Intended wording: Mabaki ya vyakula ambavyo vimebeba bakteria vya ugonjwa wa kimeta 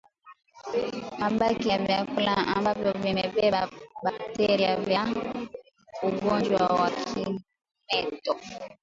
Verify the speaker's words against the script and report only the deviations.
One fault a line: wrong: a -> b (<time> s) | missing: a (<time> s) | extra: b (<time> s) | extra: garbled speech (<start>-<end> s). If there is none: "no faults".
no faults